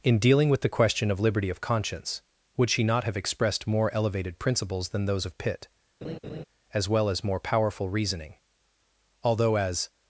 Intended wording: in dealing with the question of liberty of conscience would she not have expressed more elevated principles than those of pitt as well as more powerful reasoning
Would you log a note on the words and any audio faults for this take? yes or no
yes